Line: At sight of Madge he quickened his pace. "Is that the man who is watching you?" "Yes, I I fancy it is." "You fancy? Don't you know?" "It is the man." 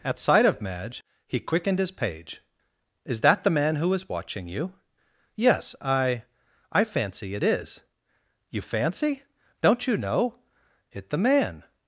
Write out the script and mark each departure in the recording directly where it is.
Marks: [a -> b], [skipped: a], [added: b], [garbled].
At sight of Madge he quickened his [pace. -> page] "Is that the man who is watching you?" "Yes, I I fancy it is." "You fancy? Don't you know?" "It [skipped: is] the man."